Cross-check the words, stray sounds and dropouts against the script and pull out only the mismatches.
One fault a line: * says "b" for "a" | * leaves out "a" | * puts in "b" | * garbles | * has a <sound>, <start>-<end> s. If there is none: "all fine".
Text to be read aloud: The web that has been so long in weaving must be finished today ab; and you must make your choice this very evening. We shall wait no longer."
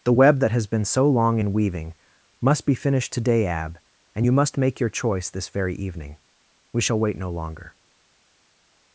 all fine